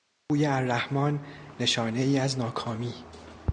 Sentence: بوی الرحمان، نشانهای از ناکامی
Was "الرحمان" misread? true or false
false